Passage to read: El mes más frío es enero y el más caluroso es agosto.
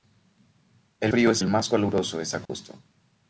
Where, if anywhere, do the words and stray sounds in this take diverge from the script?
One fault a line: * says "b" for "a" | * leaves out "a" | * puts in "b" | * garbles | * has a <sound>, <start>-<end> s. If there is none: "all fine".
* leaves out "mes más"
* leaves out "enero y"
* has a dropout, 2.5-2.5 s